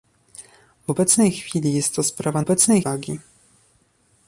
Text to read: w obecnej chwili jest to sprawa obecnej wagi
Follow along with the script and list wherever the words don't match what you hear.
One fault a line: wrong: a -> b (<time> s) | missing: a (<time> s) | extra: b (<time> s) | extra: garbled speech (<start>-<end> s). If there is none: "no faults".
no faults